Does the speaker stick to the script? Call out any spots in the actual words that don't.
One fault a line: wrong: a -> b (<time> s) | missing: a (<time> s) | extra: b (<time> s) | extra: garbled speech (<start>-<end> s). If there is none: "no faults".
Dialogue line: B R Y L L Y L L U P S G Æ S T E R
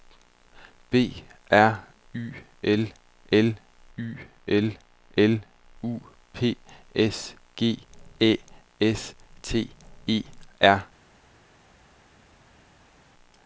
no faults